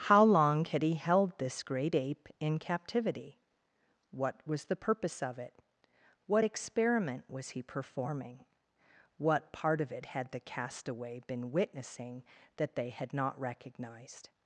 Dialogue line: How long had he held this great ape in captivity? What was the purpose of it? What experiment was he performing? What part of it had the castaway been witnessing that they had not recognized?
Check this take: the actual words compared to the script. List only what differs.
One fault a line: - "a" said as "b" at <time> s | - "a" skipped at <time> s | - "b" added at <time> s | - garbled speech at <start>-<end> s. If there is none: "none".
none